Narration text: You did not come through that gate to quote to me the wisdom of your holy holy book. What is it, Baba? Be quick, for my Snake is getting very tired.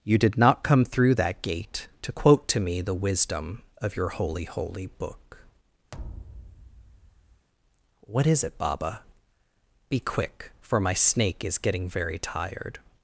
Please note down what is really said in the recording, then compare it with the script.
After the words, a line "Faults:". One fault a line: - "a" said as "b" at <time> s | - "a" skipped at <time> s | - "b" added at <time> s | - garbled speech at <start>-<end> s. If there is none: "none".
You did not come through that gate to quote to me the wisdom of your holy holy book. What is it, Baba? Be quick, for my Snake is getting very tired.
Faults:
none